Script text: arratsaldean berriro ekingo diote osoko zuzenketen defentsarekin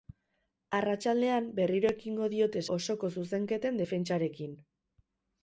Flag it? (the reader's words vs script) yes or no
no